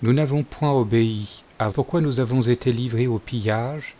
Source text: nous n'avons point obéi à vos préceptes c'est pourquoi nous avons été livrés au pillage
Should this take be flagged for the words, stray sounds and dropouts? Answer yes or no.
yes